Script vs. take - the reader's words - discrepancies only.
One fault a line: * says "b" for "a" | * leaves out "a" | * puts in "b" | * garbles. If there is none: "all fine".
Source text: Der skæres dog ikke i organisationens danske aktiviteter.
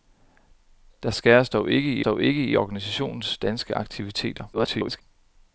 * puts in "dog ikke i"
* garbles